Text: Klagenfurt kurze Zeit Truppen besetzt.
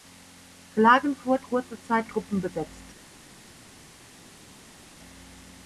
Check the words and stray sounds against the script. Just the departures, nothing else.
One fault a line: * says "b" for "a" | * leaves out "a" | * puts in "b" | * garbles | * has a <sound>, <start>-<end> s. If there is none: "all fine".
all fine